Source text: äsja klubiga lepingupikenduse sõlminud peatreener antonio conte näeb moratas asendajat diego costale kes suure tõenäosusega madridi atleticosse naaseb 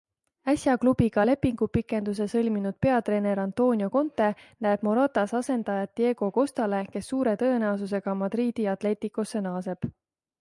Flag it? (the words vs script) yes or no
no